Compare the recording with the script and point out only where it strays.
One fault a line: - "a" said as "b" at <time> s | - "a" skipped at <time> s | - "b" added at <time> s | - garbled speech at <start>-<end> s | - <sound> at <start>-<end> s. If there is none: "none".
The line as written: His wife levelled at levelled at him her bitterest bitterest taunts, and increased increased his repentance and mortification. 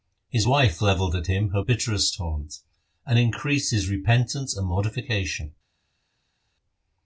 - "levelled at" skipped at 1.3 s
- "bitterest" skipped at 2.2 s
- "increased" skipped at 3.7 s